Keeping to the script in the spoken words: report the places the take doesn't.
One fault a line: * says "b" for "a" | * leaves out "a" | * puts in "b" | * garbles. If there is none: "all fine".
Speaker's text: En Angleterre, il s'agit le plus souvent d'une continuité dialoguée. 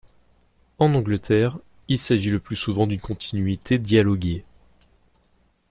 all fine